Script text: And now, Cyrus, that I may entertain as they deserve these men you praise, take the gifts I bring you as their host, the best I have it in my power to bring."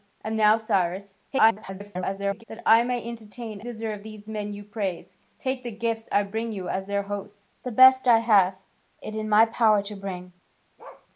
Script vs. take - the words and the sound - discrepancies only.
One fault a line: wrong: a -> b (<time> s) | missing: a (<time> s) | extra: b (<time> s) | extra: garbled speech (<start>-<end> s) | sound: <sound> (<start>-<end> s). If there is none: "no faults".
extra: garbled speech (1.3-2.4 s)
missing: as they (3.6 s)
sound: bark (10.8-11.1 s)